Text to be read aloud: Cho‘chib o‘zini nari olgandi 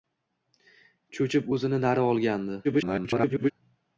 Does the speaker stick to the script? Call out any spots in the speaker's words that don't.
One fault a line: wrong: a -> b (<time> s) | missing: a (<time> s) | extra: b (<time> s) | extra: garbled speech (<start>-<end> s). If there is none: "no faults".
extra: garbled speech (2.6-3.5 s)